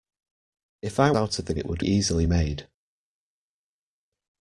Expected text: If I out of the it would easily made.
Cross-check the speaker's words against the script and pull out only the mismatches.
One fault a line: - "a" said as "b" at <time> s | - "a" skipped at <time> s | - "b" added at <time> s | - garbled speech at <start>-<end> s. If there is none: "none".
none